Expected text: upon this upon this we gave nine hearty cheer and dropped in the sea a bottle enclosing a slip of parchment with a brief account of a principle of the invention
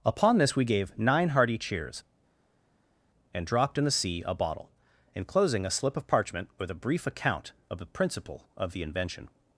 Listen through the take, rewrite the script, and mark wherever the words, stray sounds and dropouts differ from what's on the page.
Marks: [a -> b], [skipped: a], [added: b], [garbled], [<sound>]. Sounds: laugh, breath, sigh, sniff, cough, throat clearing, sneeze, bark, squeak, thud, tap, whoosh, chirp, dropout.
upon this [skipped: upon this] we gave nine hearty [cheer -> cheers] and dropped in the sea a bottle enclosing a slip of parchment with a brief account of [a -> the] principle of the invention